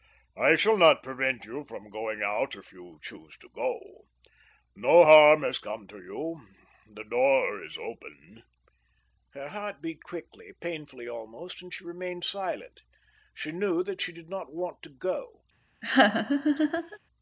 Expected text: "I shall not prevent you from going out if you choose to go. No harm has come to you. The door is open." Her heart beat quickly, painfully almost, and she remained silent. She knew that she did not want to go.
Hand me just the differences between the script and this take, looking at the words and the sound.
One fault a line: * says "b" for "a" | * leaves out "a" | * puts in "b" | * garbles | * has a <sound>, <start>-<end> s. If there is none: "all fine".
* has a laugh, 15.8-17.0 s